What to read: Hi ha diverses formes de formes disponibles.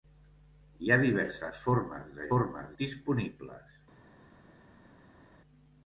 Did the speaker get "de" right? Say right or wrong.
right